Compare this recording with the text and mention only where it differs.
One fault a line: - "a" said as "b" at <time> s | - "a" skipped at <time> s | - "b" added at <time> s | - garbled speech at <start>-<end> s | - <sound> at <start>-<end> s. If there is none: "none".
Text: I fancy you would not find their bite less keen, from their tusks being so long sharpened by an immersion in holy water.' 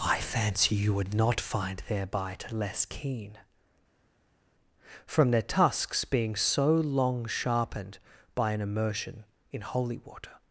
none